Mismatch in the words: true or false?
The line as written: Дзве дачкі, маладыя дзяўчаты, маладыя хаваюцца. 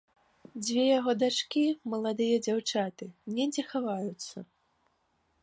true